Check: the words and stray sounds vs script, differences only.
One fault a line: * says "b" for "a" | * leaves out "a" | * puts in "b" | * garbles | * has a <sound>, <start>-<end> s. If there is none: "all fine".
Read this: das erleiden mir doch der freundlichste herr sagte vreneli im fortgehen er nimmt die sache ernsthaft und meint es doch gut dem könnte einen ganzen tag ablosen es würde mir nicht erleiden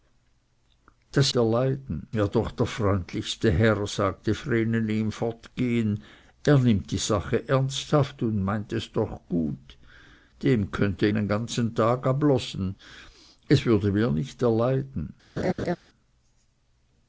* has a laugh, 15.4-15.8 s